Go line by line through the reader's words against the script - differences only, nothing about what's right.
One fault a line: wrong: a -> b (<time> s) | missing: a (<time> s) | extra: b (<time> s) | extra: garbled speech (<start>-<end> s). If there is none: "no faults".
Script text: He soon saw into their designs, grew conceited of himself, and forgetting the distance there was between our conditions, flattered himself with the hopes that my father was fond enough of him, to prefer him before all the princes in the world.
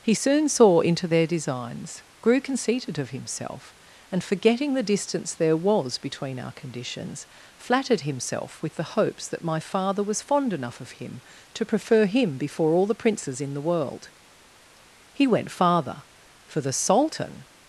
extra: He went farther for the sultan (15.1 s)